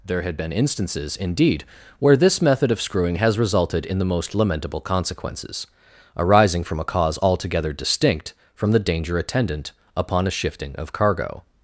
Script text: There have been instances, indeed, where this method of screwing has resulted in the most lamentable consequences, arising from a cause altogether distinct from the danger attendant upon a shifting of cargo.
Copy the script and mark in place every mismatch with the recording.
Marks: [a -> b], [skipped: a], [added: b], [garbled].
There [have -> had] been instances, indeed, where this method of screwing has resulted in the most lamentable consequences, arising from a cause altogether distinct from the danger attendant upon a shifting of cargo.